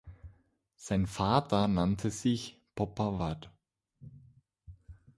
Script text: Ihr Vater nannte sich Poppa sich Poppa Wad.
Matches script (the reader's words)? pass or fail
fail